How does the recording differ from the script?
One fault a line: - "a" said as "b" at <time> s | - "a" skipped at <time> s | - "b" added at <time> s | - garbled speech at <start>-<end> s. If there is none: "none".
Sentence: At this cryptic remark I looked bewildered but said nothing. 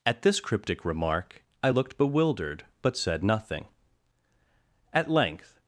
- "At length" added at 4.9 s